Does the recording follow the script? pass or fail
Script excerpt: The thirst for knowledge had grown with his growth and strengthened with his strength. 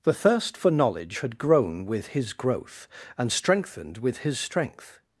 pass